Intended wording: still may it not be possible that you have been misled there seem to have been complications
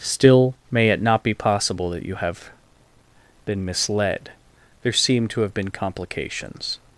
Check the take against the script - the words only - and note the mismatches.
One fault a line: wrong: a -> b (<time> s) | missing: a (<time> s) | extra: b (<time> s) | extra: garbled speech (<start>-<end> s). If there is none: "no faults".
no faults